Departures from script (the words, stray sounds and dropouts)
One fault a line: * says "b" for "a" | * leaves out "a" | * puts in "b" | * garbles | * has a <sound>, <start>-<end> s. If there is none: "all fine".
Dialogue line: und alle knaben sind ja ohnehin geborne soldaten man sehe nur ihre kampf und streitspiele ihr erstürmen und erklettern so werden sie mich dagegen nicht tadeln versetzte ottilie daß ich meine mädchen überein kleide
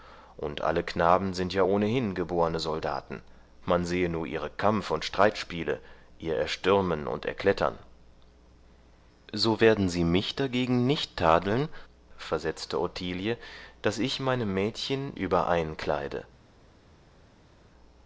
all fine